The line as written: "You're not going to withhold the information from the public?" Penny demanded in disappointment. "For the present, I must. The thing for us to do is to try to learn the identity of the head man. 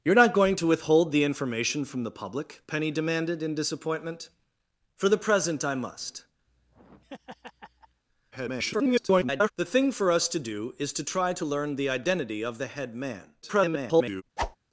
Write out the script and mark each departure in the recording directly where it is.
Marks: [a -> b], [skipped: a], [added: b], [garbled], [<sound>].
"You're not going to withhold the information from the public?" Penny demanded in disappointment. "For the present, I must. [laugh] [garbled] The thing for us to do is to try to learn the identity of the head man. [garbled] [whoosh]